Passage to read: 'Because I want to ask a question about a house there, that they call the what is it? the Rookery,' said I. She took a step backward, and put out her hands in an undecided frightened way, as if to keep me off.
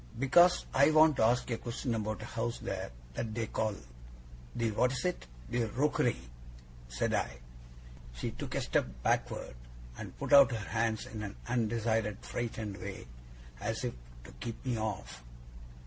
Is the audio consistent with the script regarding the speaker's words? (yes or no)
yes